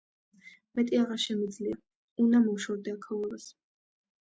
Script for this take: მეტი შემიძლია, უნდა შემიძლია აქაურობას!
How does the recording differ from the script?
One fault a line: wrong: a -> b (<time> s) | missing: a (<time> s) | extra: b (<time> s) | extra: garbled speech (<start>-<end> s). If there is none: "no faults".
extra: აღარ (1.0 s)
wrong: შემიძლია -> მოვშორდე (2.5 s)